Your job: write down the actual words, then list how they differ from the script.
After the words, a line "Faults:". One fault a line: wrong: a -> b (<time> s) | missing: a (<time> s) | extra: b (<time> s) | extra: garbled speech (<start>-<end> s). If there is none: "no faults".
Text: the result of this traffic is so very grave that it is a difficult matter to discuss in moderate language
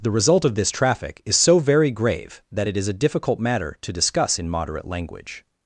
the result of this traffic is so very grave that it is a difficult matter to discuss in moderate language
Faults:
no faults